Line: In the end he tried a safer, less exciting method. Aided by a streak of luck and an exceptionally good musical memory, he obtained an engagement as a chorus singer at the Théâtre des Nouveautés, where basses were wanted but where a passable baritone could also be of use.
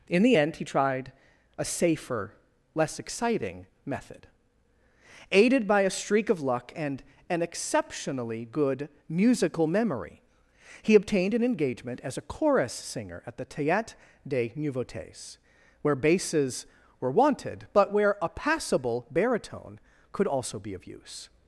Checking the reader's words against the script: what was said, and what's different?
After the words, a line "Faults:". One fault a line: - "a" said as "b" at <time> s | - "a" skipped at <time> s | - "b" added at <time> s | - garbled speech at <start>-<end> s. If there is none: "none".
In the end he tried a safer, less exciting method. Aided by a streak of luck and an exceptionally good musical memory, he obtained an engagement as a chorus singer at the Théâtre des Nouveautés, where basses were wanted but where a passable baritone could also be of use.
Faults:
none